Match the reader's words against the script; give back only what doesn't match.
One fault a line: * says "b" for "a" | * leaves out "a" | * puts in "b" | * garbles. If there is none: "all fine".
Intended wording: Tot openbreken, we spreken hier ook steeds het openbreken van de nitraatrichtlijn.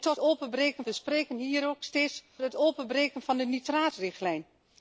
all fine